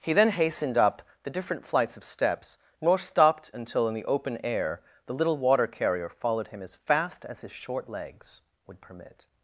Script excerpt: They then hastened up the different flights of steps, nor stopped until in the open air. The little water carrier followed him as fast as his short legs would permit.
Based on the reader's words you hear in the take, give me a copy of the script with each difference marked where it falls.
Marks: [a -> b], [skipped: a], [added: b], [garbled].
[They -> He] then hastened up the different flights of steps, nor stopped until in the open air. The little water carrier followed him as fast as his short legs would permit.